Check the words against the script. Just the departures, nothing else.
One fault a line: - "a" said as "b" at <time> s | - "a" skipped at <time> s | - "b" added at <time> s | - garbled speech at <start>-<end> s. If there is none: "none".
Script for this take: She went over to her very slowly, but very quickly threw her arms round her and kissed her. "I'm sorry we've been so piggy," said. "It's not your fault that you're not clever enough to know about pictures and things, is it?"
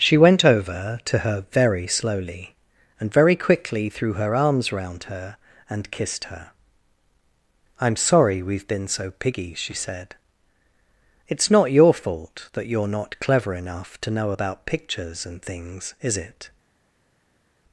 - "but" said as "and" at 3.0 s
- "she" added at 9.5 s